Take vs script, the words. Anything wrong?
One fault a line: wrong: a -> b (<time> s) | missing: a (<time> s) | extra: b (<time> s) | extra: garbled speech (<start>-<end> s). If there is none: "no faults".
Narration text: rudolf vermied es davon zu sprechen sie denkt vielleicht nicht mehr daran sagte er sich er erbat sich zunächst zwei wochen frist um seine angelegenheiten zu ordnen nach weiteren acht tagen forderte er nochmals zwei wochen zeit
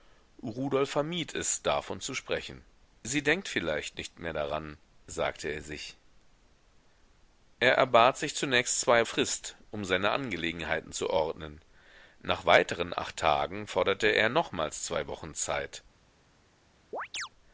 missing: wochen (9.1 s)